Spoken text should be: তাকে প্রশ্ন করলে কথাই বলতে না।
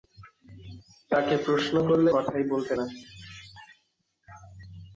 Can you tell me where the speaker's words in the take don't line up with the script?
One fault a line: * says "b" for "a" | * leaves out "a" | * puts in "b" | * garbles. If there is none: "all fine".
all fine